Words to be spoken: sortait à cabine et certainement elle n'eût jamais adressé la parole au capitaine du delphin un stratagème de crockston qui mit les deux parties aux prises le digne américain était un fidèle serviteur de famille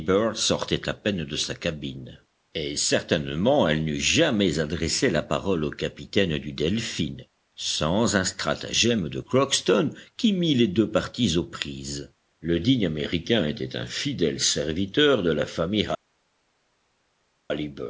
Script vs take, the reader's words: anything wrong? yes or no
yes